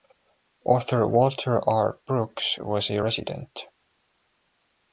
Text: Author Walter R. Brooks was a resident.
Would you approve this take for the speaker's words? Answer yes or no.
yes